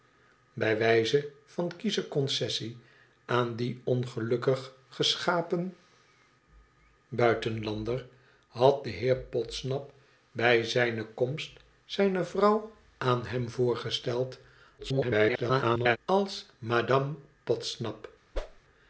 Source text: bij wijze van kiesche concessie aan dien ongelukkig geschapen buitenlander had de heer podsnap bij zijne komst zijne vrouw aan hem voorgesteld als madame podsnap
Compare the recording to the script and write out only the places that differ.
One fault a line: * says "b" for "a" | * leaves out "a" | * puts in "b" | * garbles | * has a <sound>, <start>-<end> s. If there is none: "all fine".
* garbles
* has a whoosh, 18.3-18.6 s